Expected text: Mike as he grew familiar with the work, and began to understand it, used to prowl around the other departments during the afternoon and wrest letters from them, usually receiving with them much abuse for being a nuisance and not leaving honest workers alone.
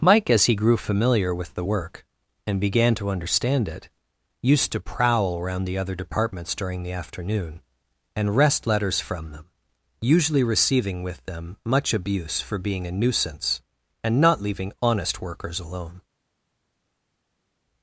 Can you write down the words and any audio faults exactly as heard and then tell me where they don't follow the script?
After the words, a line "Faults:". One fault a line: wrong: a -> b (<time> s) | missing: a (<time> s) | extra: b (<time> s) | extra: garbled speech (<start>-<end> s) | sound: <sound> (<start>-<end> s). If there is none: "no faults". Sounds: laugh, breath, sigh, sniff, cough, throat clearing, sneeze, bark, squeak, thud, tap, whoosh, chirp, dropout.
Mike as he grew familiar with the work, and began to understand it, used to prowl around the other departments during the afternoon and wrest letters from them, usually receiving with them much abuse for being a nuisance and not leaving honest workers alone.
Faults:
no faults